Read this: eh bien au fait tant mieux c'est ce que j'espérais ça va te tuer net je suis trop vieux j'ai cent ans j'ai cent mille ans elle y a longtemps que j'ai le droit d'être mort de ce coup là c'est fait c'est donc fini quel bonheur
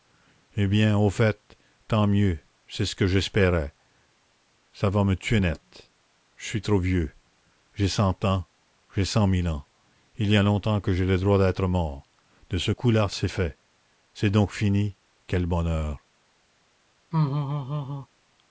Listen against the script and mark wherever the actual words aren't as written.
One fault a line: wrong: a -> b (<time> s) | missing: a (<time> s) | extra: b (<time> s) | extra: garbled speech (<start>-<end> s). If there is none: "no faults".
wrong: te -> me (5.0 s)
wrong: elle -> il (10.2 s)